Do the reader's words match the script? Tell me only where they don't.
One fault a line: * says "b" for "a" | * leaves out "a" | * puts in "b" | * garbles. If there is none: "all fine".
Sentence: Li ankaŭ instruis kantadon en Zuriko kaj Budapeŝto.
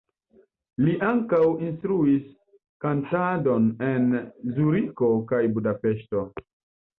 all fine